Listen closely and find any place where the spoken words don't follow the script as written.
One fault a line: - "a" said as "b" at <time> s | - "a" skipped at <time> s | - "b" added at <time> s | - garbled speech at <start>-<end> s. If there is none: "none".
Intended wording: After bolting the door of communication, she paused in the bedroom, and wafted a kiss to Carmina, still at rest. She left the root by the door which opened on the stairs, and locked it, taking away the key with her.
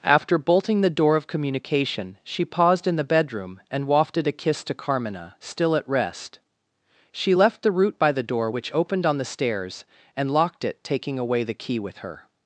none